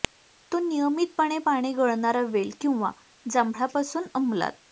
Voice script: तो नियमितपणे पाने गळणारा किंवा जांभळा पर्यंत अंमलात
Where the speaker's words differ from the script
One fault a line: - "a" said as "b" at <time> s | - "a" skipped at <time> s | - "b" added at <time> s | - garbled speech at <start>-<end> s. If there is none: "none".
- "वेल" added at 2.3 s
- "पर्यंत" said as "पासून" at 3.7 s